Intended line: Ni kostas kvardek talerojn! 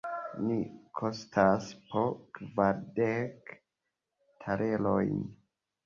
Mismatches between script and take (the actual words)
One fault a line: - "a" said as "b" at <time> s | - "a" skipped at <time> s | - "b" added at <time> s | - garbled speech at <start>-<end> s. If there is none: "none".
- "po" added at 1.9 s